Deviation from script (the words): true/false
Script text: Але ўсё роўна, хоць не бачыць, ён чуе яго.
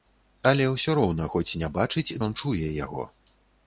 false